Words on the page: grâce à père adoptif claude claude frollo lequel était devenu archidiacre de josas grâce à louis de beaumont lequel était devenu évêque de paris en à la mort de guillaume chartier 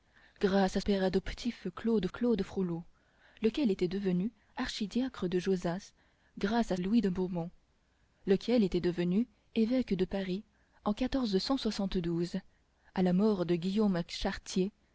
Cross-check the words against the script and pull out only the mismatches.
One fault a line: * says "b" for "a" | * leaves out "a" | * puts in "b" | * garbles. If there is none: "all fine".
all fine